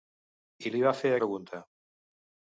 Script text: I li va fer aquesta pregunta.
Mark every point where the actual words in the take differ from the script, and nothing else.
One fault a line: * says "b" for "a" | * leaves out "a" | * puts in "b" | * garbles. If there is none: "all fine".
* leaves out "aquesta"